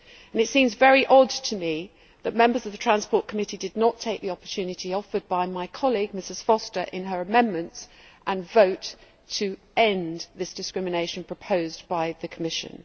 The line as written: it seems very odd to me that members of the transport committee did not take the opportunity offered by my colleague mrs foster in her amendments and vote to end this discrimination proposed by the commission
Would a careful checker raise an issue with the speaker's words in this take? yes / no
no